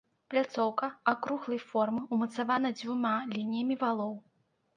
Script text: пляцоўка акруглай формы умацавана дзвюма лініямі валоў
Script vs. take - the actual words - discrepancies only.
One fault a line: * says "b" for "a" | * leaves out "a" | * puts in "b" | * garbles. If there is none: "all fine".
all fine